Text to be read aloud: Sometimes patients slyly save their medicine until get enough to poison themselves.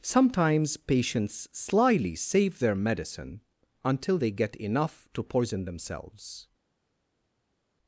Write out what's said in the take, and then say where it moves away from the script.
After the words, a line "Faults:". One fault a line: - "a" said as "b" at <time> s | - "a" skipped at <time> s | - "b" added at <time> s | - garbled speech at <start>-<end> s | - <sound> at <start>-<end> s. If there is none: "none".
Sometimes patients slyly save their medicine until they get enough to poison themselves.
Faults:
- "they" added at 4.1 s